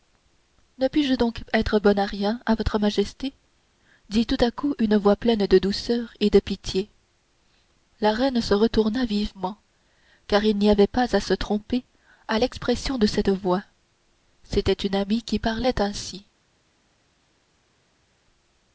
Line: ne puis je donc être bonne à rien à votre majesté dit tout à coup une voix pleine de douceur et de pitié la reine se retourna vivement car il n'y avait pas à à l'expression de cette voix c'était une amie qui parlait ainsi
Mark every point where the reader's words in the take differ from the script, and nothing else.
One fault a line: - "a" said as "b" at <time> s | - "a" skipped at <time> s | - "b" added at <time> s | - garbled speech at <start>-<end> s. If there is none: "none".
- "se tromper" added at 11.2 s